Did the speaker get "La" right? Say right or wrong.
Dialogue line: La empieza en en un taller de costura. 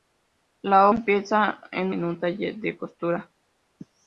right